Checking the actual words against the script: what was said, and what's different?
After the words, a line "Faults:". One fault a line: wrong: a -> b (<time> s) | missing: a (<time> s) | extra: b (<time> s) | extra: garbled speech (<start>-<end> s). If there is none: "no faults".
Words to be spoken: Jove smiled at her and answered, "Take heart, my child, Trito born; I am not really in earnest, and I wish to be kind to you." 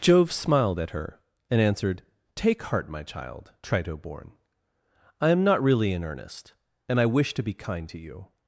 Jove smiled at her and answered, "Take heart, my child, Trito born; I am not really in earnest, and I wish to be kind to you."
Faults:
no faults